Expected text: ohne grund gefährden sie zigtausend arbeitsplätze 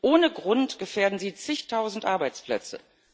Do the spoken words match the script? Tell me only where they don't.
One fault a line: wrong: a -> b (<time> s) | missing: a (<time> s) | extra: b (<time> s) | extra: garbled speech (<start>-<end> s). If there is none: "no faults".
no faults